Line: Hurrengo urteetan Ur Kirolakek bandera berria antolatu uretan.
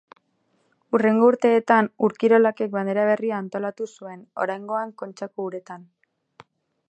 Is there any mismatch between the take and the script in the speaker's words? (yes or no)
yes